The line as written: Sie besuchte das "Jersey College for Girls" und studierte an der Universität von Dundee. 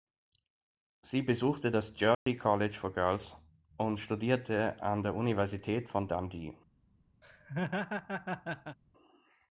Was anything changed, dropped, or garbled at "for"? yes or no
no